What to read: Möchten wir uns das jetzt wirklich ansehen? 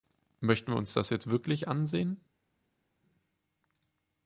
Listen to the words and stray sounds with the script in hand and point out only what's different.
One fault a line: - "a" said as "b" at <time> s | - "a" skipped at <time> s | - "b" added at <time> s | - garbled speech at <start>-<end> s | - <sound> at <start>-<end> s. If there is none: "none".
none